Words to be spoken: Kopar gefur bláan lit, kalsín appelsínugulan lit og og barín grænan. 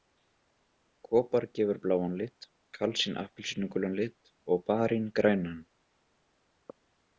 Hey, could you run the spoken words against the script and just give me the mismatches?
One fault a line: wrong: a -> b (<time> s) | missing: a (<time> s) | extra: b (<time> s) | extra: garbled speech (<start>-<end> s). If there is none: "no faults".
missing: og (4.7 s)